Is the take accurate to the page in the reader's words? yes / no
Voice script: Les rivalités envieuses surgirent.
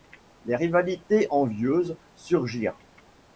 yes